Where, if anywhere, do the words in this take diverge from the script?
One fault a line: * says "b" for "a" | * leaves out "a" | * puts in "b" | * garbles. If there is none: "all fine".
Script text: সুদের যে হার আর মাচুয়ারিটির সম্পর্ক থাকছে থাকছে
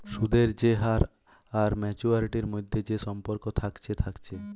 * puts in "মধ্যে যে"